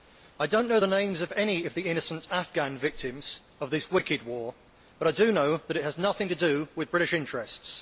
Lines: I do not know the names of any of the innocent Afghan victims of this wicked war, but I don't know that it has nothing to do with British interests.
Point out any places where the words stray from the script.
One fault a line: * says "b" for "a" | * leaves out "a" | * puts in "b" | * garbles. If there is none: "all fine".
* says "do" for "don't"